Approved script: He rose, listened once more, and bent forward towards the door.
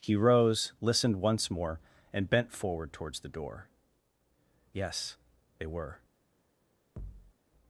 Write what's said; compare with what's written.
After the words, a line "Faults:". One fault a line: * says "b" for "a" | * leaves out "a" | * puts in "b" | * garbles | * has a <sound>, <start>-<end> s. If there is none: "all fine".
He rose, listened once more, and bent forward towards the door. Yes, they were
Faults:
* puts in "Yes they were"
* has a thud, 7.0-7.3 s